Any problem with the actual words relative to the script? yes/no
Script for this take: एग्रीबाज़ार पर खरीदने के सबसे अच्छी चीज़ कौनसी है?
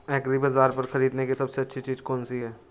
no